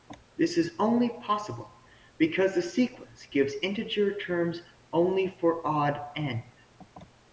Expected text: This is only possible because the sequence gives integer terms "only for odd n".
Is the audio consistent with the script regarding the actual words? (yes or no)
yes